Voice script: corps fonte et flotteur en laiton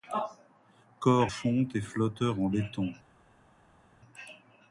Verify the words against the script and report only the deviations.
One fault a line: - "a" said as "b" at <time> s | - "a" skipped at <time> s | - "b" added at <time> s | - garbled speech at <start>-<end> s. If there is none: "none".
none